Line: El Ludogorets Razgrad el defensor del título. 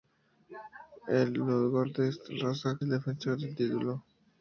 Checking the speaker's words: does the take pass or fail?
pass